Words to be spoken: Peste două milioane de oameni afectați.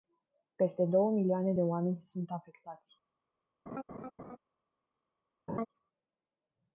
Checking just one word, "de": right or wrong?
right